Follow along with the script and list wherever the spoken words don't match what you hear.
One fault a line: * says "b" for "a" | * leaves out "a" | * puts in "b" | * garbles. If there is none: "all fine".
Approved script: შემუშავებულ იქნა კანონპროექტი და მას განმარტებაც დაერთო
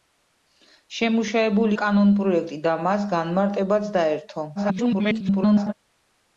* leaves out "იქნა"
* garbles